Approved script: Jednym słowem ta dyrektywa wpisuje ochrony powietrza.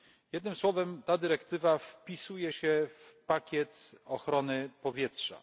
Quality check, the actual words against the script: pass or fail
fail